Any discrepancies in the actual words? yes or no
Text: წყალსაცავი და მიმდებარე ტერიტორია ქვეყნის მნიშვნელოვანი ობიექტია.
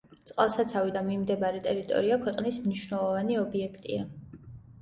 no